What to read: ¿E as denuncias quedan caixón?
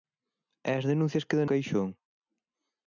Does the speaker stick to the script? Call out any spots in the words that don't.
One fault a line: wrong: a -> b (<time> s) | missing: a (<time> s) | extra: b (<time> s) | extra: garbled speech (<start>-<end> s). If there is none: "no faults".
no faults